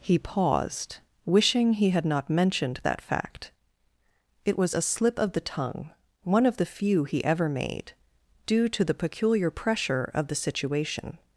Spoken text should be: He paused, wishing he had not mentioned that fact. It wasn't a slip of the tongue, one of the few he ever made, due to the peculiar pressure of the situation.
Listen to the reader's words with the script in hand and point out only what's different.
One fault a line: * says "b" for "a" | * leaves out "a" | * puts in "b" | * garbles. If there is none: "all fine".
* says "was" for "wasn't"